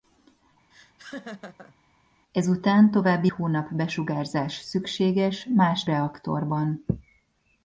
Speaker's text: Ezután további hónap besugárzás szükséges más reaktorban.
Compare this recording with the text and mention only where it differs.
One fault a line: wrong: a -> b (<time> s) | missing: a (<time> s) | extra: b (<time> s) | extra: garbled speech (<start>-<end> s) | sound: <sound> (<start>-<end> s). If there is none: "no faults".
sound: laugh (0.7-1.8 s)